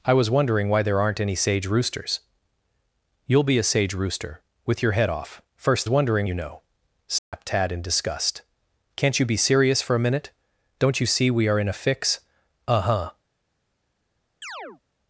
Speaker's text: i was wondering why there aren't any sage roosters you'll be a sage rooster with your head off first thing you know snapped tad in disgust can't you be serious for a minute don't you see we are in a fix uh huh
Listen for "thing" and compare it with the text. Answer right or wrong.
wrong